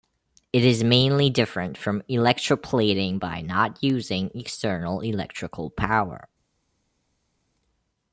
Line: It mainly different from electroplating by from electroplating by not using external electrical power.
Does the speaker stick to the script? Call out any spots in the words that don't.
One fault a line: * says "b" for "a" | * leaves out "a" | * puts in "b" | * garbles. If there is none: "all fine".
* puts in "is"
* leaves out "from electroplating by"